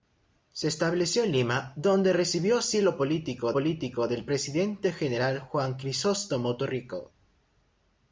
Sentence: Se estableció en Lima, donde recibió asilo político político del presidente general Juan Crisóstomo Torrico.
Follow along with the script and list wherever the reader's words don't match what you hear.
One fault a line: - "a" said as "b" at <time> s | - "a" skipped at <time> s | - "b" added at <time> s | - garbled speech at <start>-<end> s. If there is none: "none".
none